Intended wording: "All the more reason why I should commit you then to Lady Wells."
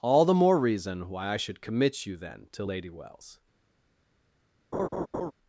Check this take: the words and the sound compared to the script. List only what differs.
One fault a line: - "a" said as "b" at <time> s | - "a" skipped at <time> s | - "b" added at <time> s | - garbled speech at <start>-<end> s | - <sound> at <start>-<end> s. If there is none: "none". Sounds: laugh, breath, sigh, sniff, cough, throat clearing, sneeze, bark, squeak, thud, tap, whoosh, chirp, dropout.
- laugh at 4.7-5.3 s